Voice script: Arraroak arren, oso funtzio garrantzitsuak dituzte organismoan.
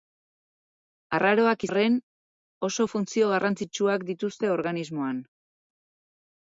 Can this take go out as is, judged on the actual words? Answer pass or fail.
pass